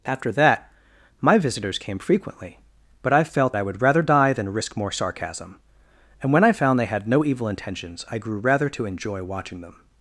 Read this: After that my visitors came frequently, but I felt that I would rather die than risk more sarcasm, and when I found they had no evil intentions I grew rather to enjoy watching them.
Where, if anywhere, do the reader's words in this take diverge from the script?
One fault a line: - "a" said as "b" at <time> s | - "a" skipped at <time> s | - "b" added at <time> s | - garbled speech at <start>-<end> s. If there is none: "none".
- "that" skipped at 3.5 s